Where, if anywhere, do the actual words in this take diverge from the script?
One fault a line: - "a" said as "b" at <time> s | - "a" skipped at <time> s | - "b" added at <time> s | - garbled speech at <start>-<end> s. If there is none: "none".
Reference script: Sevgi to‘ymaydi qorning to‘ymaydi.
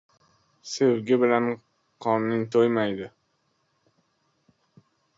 - "to‘ymaydi" said as "bilan" at 1.2 s